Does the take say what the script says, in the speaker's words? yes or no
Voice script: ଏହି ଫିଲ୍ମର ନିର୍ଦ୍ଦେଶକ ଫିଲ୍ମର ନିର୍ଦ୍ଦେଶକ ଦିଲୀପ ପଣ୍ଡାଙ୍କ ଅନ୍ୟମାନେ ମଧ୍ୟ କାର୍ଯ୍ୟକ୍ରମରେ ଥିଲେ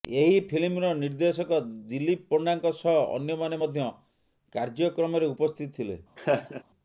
no